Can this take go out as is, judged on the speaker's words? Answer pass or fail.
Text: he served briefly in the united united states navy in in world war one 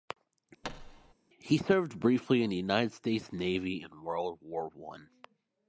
fail